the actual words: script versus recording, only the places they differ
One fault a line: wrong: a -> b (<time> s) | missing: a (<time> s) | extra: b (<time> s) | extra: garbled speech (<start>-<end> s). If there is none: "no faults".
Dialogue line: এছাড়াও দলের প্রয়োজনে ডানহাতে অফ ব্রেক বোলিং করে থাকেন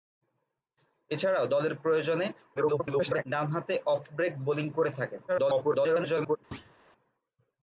extra: garbled speech (2.6-3.2 s)
extra: garbled speech (5.3-6.4 s)